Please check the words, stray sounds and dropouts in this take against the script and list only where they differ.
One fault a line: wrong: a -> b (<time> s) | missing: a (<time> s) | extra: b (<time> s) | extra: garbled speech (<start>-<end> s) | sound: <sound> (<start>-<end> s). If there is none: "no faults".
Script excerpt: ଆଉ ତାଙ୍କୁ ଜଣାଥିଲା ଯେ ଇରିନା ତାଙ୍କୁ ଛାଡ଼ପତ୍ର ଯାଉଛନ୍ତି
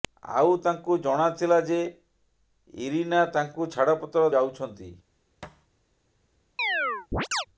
sound: thud (5.4-5.7 s)
sound: chirp (6.6-7.5 s)